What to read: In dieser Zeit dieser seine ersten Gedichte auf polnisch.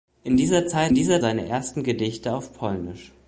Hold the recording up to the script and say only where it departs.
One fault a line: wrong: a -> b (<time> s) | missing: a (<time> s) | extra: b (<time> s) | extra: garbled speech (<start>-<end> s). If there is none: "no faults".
no faults